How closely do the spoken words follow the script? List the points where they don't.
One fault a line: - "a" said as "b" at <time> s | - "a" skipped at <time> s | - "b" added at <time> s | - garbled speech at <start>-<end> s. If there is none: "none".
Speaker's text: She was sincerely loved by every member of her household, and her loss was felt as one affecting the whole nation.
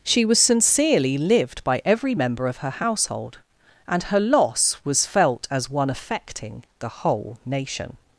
- "loved" said as "lived" at 1.2 s